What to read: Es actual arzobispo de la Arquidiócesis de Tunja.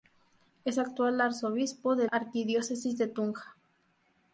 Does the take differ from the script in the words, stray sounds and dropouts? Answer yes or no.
yes